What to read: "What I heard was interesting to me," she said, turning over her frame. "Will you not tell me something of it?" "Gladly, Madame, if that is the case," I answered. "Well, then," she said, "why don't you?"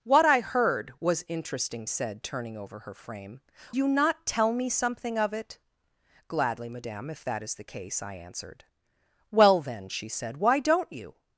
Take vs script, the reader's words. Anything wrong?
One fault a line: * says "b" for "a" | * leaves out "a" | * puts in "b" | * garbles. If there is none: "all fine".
* leaves out "to me she"
* leaves out "Will"